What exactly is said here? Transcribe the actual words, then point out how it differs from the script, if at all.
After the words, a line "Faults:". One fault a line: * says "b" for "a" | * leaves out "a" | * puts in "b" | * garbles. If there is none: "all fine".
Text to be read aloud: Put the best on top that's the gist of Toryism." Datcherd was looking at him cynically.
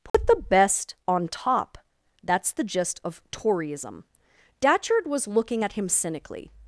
Put the best on top that's the gist of Toryism." Datcherd was looking at him cynically.
Faults:
all fine